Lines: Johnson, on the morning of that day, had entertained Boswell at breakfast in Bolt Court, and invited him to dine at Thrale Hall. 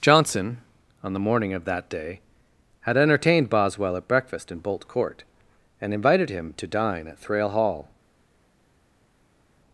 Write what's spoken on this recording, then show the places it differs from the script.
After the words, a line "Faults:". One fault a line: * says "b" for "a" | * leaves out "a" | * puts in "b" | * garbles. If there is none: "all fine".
Johnson, on the morning of that day, had entertained Boswell at breakfast in Bolt Court, and invited him to dine at Thrale Hall.
Faults:
all fine